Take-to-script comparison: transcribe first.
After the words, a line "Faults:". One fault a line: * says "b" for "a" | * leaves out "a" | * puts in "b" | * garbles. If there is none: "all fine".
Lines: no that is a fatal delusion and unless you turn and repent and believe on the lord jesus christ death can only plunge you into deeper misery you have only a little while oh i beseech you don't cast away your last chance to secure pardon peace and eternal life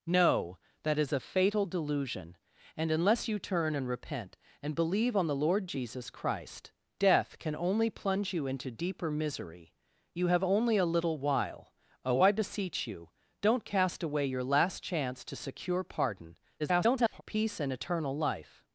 no that is a fatal delusion and unless you turn and repent and believe on the lord jesus christ death can only plunge you into deeper misery you have only a little while oh i beseech you don't cast away your last chance to secure pardon [garbled] peace and eternal life
Faults:
* garbles